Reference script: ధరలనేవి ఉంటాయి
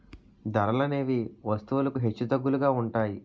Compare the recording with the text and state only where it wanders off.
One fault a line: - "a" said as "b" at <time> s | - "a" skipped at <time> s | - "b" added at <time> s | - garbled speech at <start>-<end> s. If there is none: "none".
- "వస్తువులకు హెచ్చుతగ్గులుగా" added at 1.4 s